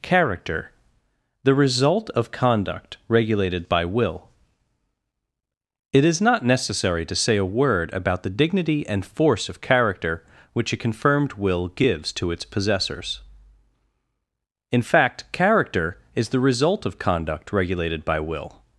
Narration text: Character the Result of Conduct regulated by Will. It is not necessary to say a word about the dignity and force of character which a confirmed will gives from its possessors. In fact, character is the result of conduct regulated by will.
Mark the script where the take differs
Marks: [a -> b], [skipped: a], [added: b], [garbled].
Character the Result of Conduct regulated by Will. It is not necessary to say a word about the dignity and force of character which a confirmed will gives [from -> to] its possessors. In fact, character is the result of conduct regulated by will.